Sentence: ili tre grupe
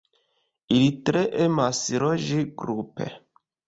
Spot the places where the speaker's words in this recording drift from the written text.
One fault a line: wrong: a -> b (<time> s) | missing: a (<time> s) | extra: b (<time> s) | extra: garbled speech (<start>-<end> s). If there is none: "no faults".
extra: emas loĝi (1.4 s)